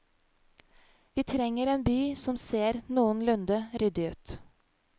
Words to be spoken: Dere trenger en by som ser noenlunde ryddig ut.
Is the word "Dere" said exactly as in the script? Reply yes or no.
no